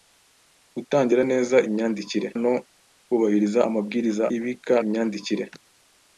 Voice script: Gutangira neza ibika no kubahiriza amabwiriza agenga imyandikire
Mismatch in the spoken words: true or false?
true